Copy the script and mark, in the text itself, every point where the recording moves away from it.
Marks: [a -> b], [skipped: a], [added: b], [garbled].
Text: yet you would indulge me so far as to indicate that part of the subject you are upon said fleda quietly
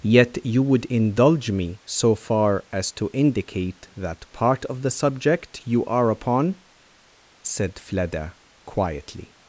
yet you would indulge me so far as to indicate that part of the subject you are upon said fleda quietly